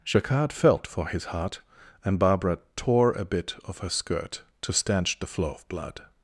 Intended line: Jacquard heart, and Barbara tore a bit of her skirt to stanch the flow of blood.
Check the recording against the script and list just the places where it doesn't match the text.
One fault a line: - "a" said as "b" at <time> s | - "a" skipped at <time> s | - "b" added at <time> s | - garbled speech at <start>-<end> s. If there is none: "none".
- "felt for his" added at 0.5 s